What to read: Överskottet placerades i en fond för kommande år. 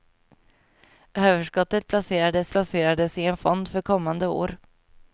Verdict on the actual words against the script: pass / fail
fail